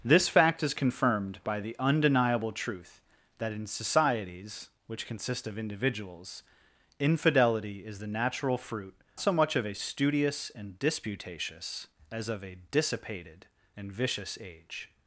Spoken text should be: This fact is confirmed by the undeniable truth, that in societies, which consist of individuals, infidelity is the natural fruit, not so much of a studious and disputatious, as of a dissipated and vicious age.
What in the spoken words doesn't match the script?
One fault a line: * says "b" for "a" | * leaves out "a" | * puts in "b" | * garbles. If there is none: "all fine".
* leaves out "not"